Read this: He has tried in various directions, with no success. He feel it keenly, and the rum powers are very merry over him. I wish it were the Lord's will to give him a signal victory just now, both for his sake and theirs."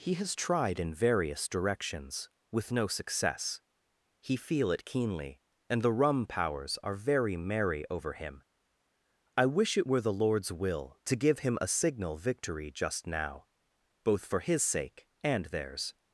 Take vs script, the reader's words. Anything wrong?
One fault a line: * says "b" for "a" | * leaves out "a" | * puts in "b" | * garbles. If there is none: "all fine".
all fine